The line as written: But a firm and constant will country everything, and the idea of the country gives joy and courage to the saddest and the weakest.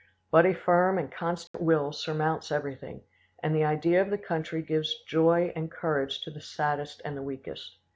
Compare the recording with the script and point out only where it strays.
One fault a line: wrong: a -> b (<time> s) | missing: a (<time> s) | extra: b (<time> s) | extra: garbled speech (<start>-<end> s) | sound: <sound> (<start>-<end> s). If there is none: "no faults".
sound: dropout (1.5-1.5 s)
wrong: country -> surmounts (1.9 s)